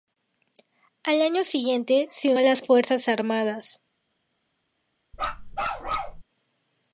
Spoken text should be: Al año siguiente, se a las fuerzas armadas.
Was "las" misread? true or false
false